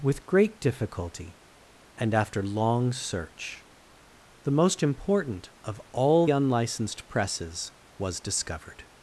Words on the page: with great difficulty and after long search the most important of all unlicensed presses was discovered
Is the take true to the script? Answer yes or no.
yes